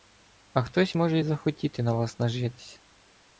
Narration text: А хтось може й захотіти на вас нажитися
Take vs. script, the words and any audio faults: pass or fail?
pass